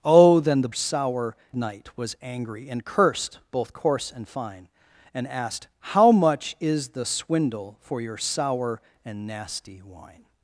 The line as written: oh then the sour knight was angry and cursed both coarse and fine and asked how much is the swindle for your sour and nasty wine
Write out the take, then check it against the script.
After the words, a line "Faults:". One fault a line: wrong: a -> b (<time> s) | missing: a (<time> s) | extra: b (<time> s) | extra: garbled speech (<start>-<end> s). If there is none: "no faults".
oh then the sour knight was angry and cursed both coarse and fine and asked how much is the swindle for your sour and nasty wine
Faults:
no faults